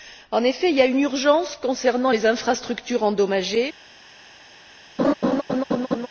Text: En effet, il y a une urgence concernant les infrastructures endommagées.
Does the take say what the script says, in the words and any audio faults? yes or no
no